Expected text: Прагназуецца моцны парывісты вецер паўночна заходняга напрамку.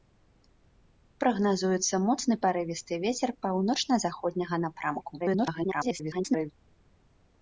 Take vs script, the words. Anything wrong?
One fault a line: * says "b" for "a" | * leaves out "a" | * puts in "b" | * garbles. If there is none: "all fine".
* garbles